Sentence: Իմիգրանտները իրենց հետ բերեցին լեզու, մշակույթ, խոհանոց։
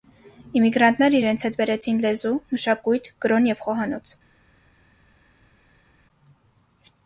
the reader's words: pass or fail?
fail